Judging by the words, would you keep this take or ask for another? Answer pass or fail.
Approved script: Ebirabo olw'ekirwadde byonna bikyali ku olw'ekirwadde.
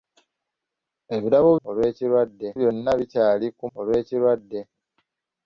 pass